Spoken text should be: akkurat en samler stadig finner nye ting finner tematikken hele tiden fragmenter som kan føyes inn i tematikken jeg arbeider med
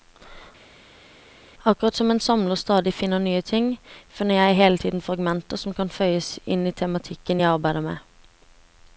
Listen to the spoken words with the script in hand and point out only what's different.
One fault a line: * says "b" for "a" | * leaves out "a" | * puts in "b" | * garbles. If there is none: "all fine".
* puts in "som"
* says "jeg" for "tematikken"